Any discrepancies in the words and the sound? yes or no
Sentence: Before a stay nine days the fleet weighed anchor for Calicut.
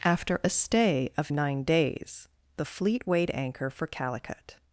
yes